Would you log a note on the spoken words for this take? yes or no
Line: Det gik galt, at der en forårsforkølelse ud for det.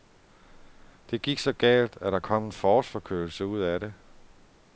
yes